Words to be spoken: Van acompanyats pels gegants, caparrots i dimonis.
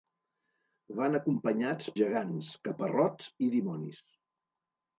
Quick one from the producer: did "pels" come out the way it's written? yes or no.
no